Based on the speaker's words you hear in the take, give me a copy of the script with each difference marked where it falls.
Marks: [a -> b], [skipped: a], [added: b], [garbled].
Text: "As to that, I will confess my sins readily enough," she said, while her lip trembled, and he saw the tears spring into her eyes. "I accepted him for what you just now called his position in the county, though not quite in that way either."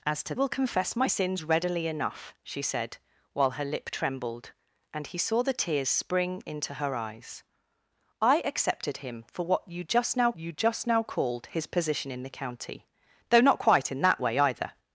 "As to [skipped: that, I] will confess my sins readily enough," she said, while her lip trembled, and he saw the tears spring into her eyes. "I accepted him for what you just now [added: you just now] called his position in the county, though not quite in that way either."